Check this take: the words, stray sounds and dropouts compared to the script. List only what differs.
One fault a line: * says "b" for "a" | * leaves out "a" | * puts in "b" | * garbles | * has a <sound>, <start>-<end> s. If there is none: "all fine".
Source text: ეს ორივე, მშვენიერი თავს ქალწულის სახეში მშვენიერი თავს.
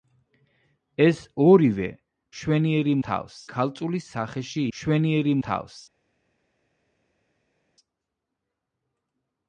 all fine